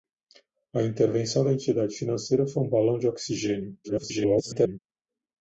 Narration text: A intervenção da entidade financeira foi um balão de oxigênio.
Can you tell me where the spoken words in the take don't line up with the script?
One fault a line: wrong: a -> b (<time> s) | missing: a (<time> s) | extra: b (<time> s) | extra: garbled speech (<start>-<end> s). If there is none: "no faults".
extra: garbled speech (3.8-4.8 s)